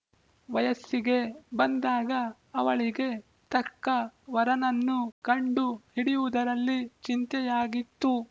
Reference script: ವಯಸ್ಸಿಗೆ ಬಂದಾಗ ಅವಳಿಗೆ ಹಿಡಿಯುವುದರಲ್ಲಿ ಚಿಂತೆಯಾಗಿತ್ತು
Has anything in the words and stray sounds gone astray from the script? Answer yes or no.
yes